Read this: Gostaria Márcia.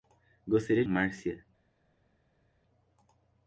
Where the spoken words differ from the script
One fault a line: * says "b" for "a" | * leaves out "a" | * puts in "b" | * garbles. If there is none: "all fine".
all fine